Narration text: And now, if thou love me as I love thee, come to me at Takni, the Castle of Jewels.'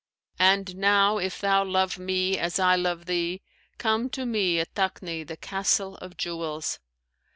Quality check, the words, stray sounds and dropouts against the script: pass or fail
pass